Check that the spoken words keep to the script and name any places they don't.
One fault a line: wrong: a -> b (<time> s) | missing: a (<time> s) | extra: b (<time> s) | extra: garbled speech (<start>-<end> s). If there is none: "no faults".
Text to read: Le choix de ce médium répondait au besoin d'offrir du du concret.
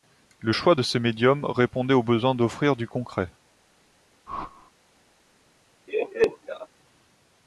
missing: du (2.9 s)